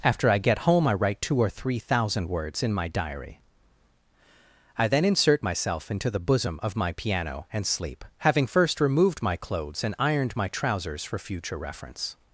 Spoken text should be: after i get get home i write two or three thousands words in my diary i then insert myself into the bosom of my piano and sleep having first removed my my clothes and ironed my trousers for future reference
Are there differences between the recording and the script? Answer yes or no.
yes